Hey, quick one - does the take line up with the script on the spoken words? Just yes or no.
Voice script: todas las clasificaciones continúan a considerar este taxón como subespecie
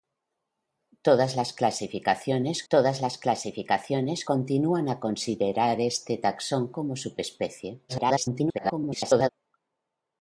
no